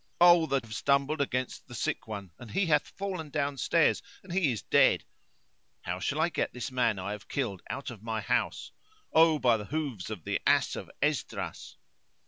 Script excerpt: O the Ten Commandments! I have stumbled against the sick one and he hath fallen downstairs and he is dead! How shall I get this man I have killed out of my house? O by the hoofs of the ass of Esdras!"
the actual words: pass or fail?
fail